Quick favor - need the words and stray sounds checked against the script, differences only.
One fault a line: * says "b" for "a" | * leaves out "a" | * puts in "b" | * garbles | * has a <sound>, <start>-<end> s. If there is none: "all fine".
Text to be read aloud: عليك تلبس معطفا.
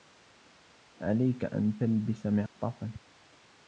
* puts in "أن"
* has a dropout, 2.5-2.6 s